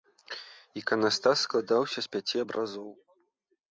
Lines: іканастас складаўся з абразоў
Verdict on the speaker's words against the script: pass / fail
fail